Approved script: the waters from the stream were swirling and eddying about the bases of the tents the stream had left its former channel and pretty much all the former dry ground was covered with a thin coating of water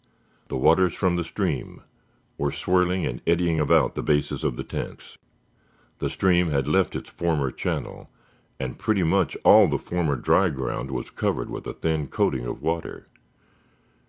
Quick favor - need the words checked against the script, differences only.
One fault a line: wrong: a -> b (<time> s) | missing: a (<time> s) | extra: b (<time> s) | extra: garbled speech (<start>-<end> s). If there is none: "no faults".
no faults